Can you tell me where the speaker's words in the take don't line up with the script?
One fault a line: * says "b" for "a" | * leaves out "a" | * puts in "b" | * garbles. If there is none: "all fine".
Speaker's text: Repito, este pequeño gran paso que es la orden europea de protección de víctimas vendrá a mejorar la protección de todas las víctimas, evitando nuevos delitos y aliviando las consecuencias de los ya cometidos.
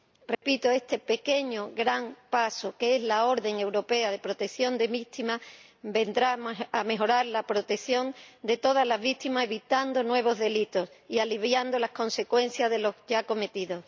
all fine